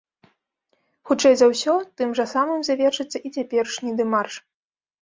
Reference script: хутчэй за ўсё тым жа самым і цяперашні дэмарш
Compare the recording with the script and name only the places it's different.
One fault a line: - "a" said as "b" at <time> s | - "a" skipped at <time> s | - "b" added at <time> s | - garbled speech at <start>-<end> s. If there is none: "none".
- "завершыцца" added at 2.7 s